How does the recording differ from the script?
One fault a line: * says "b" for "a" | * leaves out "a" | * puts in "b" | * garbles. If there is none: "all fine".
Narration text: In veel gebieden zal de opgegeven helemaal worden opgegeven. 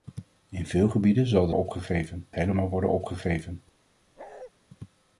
all fine